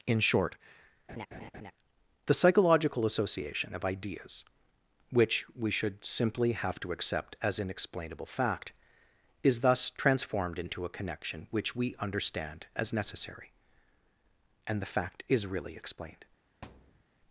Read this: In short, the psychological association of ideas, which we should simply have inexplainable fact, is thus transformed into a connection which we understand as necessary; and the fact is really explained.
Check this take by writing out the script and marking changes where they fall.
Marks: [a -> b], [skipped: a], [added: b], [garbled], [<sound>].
In short, [laugh] the psychological association of ideas, which we should simply have [added: to accept as] inexplainable fact, is thus transformed into a connection which we understand as necessary; and the fact is really explained. [thud]